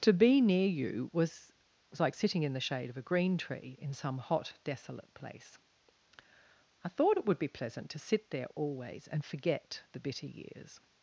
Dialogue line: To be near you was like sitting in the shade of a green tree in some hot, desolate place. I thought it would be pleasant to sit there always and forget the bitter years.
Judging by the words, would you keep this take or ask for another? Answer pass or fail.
fail